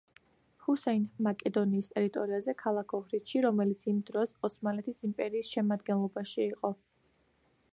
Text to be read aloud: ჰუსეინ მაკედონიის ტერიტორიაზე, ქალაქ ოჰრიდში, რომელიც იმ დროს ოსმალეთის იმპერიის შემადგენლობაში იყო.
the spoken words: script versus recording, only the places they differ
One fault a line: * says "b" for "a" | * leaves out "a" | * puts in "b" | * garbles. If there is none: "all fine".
all fine